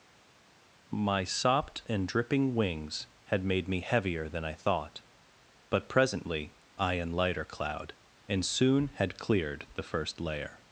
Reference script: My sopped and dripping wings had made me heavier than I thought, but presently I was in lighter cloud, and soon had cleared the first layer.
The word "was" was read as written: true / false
false